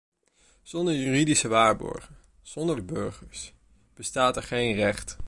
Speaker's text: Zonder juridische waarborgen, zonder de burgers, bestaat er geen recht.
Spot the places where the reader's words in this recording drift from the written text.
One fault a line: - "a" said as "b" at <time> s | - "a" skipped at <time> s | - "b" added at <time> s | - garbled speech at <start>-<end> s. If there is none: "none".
none